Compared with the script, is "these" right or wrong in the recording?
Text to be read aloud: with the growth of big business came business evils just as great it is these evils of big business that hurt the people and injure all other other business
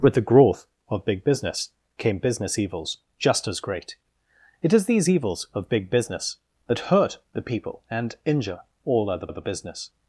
right